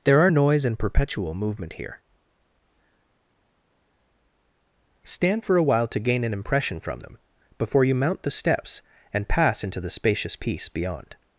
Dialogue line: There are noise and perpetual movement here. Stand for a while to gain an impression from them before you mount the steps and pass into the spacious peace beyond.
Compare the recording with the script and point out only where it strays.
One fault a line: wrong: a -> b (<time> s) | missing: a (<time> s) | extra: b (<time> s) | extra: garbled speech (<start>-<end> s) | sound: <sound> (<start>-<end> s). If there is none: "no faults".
no faults